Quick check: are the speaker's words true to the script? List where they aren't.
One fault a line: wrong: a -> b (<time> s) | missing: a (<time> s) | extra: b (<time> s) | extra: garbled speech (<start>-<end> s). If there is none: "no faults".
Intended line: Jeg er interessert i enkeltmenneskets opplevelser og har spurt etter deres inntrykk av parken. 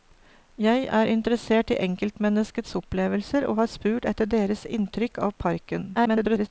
extra: garbled speech (5.9-6.5 s)